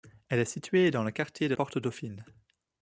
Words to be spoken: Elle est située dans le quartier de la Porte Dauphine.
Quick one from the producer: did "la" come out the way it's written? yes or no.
no